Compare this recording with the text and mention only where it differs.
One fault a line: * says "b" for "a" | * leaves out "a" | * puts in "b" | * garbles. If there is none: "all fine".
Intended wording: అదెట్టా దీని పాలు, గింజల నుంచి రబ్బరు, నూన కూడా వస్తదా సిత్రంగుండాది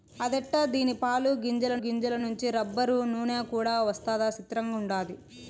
* puts in "గింజల"